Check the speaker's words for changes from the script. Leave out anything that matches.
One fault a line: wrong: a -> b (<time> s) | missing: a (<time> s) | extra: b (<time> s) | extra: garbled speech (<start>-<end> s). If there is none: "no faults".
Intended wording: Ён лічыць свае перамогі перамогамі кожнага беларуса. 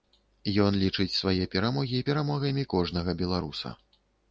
no faults